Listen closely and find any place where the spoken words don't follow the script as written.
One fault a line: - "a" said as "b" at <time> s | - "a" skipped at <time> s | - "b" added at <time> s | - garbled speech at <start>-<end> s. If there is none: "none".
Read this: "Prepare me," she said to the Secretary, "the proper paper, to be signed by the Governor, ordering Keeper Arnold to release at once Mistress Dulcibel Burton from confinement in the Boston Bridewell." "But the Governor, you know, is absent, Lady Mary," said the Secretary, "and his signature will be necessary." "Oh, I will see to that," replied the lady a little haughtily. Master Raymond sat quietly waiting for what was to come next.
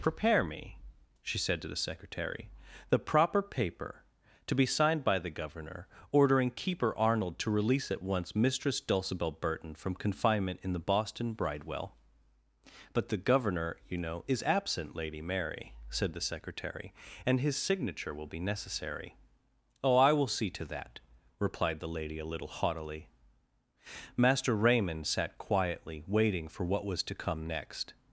none